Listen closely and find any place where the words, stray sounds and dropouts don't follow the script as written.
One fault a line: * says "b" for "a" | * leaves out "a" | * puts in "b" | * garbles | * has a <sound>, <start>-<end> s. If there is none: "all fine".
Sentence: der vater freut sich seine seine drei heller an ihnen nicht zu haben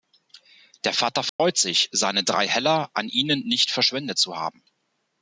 * has a dropout, 1.3-1.4 s
* leaves out "seine"
* puts in "verschwendet"